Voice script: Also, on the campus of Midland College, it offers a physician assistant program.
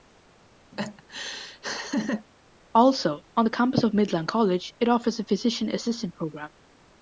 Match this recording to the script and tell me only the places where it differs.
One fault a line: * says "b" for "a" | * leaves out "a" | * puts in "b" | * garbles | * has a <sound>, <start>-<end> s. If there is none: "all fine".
* has a laugh, 0.7-2.3 s